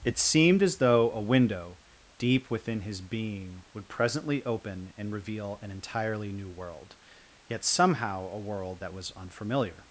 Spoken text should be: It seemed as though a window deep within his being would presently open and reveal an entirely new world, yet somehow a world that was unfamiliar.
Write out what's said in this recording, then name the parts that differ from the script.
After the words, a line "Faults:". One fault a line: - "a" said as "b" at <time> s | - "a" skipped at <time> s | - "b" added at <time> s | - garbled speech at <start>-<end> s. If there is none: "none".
It seemed as though a window deep within his being would presently open and reveal an entirely new world, yet somehow a world that was unfamiliar.
Faults:
none